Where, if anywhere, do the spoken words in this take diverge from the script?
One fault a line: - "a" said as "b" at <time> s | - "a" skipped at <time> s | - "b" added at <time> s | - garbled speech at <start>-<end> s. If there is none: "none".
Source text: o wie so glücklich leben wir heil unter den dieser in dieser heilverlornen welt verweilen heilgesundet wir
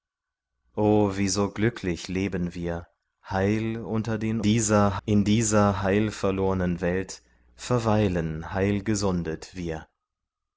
none